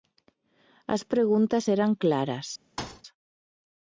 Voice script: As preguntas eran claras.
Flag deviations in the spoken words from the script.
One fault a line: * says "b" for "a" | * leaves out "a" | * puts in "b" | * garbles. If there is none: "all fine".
all fine